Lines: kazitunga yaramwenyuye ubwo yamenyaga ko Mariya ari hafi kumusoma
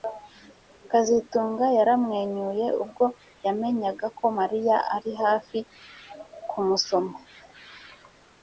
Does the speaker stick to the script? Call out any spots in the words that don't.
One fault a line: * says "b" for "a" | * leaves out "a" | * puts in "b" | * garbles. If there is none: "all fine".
all fine